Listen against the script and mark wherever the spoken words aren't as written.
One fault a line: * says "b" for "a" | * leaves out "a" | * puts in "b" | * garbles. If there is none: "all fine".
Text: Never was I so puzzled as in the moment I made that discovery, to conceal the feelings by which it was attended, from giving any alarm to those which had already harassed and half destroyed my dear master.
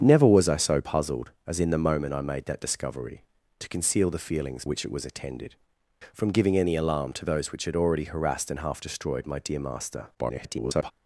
* leaves out "by"
* garbles